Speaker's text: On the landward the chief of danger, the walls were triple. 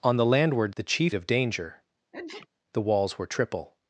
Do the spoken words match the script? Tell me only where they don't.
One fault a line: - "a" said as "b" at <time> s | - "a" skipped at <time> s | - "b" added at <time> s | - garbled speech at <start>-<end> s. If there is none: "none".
none